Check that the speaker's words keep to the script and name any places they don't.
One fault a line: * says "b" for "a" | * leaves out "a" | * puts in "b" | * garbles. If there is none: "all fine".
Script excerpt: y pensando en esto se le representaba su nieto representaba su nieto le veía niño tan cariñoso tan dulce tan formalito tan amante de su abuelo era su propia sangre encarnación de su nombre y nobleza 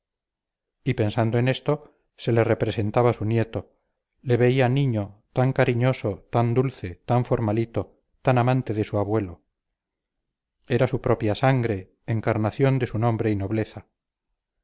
* leaves out "representaba su nieto"